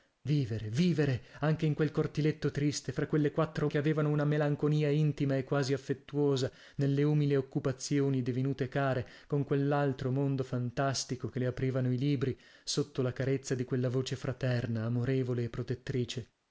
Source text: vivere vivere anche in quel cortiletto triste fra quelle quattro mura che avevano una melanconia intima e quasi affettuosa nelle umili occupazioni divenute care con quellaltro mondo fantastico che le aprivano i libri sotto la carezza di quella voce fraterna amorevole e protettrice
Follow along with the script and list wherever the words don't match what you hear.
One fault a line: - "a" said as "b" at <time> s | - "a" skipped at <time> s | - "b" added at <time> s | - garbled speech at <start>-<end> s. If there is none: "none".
- "mura" skipped at 3.7 s